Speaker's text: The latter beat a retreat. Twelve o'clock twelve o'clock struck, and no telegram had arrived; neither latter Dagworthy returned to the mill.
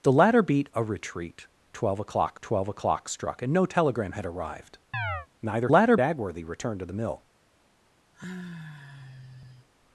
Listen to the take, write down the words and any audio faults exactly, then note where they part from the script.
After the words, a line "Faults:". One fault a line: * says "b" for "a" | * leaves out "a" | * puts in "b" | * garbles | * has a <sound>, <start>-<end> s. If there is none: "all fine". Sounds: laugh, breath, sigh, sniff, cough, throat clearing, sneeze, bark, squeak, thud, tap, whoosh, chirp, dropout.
The latter beat a retreat. Twelve o'clock twelve o'clock struck, and no telegram had arrived; neither latter Dagworthy returned to the mill.
Faults:
* has a chirp, 4.9-5.3 s
* has a sigh, 8.1-9.7 s